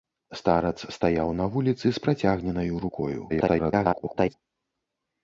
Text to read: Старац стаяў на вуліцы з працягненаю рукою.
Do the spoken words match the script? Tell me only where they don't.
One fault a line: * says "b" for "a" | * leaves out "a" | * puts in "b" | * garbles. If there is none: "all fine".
* garbles